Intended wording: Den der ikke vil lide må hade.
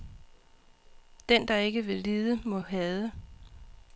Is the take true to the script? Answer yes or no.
yes